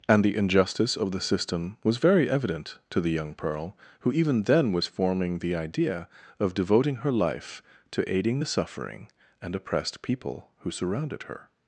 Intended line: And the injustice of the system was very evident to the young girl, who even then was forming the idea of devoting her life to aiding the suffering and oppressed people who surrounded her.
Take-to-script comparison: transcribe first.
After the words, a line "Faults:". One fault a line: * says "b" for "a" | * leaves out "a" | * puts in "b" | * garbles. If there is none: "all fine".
And the injustice of the system was very evident to the young pearl, who even then was forming the idea of devoting her life to aiding the suffering and oppressed people who surrounded her.
Faults:
* says "pearl" for "girl"